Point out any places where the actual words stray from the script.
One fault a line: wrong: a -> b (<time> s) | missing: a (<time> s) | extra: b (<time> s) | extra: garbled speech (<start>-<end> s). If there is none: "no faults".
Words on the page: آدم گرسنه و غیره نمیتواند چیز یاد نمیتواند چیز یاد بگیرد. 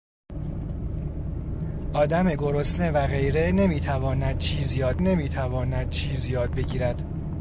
no faults